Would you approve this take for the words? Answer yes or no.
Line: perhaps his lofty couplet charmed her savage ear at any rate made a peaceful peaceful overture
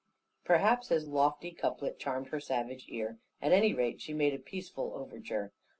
no